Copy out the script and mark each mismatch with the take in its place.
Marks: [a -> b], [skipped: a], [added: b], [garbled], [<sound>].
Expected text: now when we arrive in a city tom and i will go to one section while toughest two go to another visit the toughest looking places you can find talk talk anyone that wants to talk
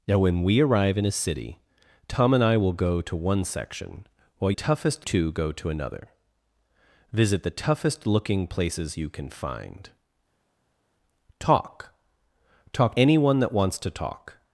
now when we arrive in a city tom and i will go to one section while toughest two go to another visit the toughest looking places you can find talk talk anyone that wants to talk